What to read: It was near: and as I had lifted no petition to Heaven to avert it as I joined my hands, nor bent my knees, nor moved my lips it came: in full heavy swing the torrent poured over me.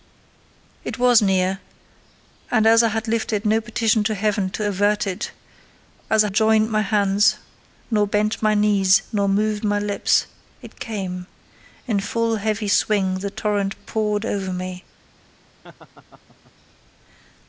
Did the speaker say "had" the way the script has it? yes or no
yes